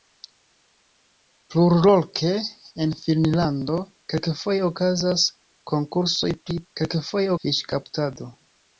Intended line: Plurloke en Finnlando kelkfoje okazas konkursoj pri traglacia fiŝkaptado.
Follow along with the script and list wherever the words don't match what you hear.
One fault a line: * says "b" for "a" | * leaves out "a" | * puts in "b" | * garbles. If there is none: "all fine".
* says "kelkfoje" for "traglacia"